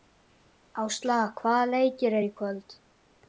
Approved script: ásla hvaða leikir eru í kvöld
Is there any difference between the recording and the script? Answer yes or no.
no